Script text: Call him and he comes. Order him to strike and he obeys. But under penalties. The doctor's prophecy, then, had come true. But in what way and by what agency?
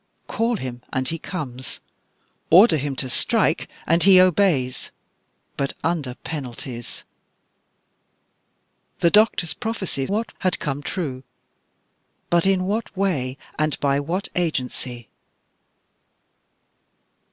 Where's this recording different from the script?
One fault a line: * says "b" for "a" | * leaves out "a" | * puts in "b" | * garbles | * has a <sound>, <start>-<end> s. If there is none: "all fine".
* says "what" for "then"